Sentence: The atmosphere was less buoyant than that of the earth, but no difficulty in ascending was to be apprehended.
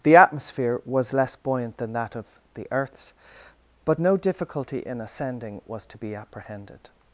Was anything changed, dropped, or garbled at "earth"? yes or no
yes